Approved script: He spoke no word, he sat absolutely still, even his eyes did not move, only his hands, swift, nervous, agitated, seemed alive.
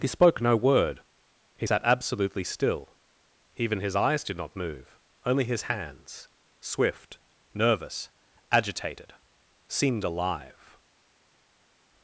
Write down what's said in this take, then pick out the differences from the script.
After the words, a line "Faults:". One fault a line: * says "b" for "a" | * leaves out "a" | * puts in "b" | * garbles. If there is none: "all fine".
He spoke no word, he sat absolutely still, even his eyes did not move, only his hands, swift, nervous, agitated, seemed alive.
Faults:
all fine